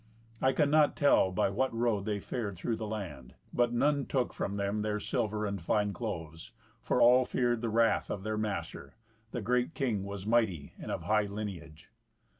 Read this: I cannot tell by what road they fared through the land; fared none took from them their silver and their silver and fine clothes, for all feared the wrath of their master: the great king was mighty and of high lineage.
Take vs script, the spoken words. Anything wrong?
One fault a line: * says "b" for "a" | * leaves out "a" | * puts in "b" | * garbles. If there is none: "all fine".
* says "but" for "fared"
* leaves out "their silver and"